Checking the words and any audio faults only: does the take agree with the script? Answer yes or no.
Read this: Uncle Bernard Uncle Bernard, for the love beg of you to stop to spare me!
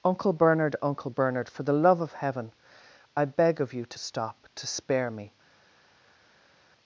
no